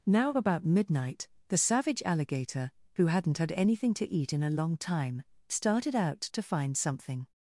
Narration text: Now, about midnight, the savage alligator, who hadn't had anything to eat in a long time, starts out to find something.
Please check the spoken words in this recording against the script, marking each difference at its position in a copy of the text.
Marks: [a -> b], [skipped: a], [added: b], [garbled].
Now, about midnight, the savage alligator, who hadn't had anything to eat in a long time, [starts -> started] out to find something.